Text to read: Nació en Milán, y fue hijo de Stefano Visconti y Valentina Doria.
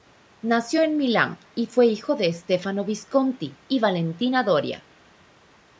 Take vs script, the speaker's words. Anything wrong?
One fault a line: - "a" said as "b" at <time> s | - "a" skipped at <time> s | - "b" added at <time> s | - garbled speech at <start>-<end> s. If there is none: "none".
none